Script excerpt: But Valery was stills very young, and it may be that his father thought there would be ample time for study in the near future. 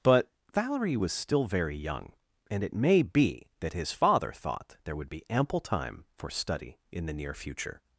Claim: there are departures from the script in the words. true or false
true